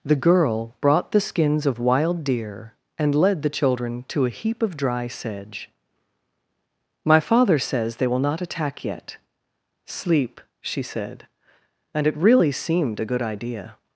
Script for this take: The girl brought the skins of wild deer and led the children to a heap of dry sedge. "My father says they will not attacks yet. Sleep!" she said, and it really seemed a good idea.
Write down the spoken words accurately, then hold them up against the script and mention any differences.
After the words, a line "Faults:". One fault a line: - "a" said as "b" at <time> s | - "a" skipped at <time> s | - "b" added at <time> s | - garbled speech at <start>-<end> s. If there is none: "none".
The girl brought the skins of wild deer and led the children to a heap of dry sedge. "My father says they will not attack yet. Sleep!" she said, and it really seemed a good idea.
Faults:
- "attacks" said as "attack" at 8.4 s